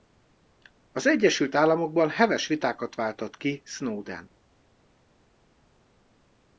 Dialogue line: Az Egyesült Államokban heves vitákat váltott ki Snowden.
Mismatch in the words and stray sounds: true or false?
false